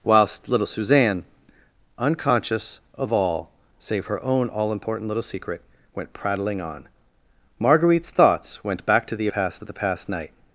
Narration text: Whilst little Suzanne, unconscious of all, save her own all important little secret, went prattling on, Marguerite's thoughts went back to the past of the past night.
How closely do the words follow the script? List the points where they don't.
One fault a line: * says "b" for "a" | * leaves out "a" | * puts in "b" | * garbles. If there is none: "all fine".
all fine